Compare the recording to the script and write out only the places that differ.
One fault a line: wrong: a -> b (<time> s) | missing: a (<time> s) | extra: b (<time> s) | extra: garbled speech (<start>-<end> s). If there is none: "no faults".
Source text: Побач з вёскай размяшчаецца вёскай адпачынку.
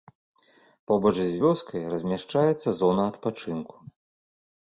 wrong: вёскай -> зона (2.8 s)